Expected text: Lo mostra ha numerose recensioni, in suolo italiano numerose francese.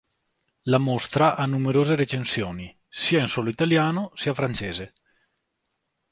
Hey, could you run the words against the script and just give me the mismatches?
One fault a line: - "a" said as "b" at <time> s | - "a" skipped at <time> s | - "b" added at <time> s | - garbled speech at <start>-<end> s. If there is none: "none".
- "Lo" said as "La" at 0.6 s
- "sia" added at 2.9 s
- "numerose" said as "sia" at 4.1 s